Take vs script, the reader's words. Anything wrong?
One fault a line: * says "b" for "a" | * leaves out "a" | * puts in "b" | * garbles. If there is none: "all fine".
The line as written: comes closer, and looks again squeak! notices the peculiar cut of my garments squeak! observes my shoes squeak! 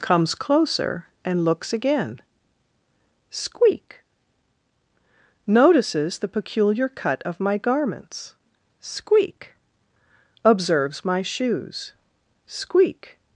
all fine